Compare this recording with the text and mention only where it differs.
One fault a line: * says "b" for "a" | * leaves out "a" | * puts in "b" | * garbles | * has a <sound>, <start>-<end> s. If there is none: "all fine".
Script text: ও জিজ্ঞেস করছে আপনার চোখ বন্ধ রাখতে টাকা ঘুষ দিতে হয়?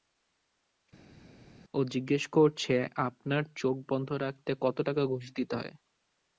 * puts in "কত"